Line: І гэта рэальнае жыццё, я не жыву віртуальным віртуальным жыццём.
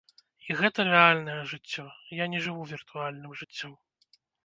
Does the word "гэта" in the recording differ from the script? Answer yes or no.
no